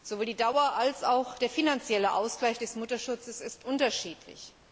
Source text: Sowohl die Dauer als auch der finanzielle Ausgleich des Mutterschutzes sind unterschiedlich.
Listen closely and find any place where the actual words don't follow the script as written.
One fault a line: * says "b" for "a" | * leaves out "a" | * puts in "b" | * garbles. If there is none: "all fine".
all fine